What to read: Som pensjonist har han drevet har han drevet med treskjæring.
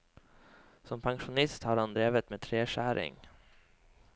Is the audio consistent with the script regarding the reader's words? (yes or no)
no